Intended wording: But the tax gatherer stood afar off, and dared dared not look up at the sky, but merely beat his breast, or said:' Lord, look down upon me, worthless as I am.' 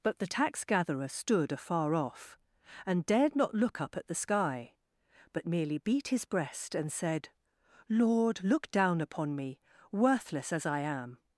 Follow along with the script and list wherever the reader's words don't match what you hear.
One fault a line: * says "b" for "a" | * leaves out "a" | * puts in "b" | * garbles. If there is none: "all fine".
* leaves out "dared"
* says "and" for "or"